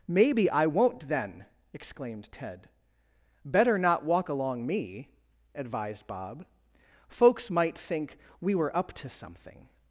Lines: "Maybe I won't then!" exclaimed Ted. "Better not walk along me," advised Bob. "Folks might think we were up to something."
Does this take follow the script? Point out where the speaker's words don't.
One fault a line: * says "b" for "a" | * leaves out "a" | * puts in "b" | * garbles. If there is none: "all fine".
all fine